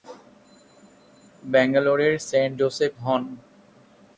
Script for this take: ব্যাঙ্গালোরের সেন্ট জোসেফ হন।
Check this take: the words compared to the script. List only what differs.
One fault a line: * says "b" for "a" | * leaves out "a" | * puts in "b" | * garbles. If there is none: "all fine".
all fine